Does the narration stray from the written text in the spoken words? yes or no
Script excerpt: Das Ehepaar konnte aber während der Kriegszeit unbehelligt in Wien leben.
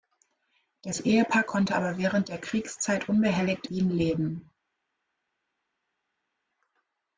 yes